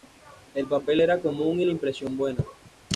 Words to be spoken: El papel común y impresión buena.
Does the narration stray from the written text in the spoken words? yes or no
yes